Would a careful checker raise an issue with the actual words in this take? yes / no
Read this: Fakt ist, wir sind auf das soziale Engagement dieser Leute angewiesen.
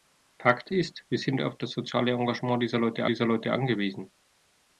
yes